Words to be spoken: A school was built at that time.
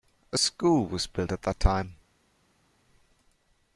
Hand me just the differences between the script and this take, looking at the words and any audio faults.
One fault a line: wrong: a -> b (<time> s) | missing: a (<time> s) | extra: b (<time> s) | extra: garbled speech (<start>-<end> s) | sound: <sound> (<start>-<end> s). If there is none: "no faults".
no faults